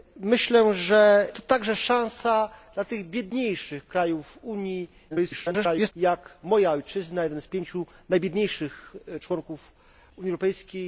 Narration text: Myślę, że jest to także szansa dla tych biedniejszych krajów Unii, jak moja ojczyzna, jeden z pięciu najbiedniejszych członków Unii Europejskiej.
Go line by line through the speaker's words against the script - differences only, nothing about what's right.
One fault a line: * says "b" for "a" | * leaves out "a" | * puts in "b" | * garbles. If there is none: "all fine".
* leaves out "jest"
* garbles